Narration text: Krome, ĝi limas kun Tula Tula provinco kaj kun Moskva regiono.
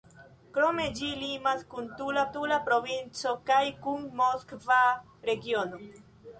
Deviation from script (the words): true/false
false